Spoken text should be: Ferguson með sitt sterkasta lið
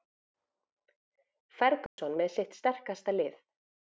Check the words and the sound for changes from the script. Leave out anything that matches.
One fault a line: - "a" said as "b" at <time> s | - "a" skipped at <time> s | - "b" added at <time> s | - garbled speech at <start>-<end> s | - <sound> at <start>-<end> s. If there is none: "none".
- dropout at 1.9-2.0 s